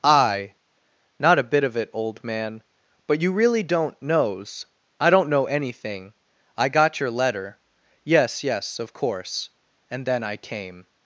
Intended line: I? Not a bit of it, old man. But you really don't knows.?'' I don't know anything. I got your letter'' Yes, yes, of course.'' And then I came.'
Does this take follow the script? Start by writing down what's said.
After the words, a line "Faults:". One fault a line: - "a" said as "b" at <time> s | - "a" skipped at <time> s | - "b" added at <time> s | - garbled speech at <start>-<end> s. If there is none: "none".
I? Not a bit of it, old man. But you really don't knows.?'' I don't know anything. I got your letter'' Yes, yes, of course.'' And then I came.'
Faults:
none